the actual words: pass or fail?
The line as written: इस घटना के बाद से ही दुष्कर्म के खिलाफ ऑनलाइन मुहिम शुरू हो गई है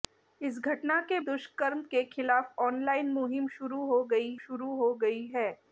fail